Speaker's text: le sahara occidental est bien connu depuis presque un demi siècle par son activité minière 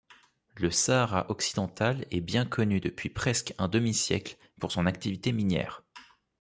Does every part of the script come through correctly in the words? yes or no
no